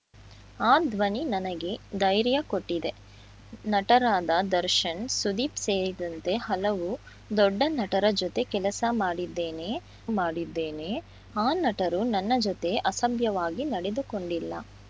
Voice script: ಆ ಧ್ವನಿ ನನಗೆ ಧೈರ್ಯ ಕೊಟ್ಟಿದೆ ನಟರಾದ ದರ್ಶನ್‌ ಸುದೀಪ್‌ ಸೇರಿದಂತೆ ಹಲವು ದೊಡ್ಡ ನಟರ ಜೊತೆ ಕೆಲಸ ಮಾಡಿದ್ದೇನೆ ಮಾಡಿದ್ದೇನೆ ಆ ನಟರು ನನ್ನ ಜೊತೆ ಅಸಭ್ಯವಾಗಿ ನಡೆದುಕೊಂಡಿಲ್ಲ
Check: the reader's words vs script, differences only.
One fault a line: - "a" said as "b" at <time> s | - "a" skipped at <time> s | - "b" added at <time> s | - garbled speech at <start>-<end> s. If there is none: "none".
none